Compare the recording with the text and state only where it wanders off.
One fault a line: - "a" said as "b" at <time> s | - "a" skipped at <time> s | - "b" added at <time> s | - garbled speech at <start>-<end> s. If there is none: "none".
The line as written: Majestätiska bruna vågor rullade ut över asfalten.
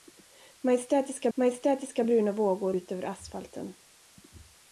- "majestätiska" added at 1.3 s
- "rullade" skipped at 2.7 s